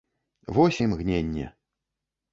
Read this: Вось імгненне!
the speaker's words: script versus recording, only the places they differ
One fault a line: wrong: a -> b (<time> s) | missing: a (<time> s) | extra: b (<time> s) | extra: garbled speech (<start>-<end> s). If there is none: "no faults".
no faults